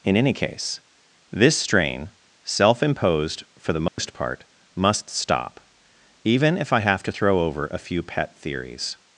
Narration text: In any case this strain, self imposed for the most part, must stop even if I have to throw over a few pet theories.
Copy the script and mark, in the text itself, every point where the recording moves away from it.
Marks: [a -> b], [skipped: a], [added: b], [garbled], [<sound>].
In any case this strain, self imposed for the most [dropout] part, must stop even if I have to throw over a few pet theories.